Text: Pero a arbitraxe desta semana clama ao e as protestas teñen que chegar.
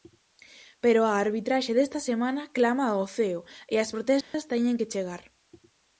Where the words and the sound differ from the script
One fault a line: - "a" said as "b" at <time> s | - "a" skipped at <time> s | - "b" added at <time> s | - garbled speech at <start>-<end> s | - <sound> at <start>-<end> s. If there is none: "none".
- "ceo" added at 3.1 s
- dropout at 4.2-4.3 s